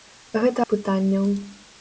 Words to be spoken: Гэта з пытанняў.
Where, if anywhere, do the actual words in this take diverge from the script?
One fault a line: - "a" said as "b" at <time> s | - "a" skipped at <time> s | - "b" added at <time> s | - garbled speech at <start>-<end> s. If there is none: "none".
none